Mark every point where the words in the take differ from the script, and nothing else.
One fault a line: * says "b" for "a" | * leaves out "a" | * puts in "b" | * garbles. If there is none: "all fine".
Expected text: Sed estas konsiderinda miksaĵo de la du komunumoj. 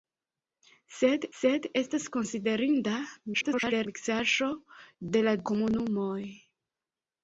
* puts in "sed"
* garbles
* leaves out "du"